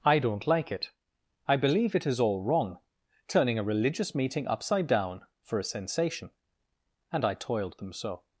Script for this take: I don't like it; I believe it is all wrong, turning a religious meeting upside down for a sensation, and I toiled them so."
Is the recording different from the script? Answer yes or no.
no